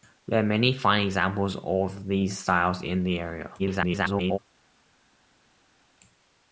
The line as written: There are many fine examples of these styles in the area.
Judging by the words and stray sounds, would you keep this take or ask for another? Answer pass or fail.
fail